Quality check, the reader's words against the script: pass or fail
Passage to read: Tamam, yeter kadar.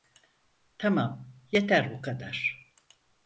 fail